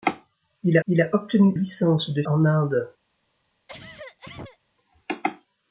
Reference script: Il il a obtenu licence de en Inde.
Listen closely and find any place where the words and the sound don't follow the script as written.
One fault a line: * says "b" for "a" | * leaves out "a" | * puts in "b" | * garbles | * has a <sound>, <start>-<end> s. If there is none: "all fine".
* has a cough, 3.7-4.6 s